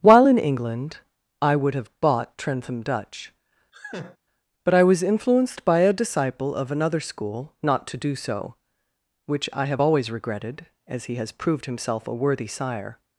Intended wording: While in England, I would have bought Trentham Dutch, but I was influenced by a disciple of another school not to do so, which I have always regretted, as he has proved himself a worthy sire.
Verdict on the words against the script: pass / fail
pass